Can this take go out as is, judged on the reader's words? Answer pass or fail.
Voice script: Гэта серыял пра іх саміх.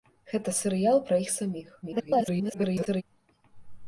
fail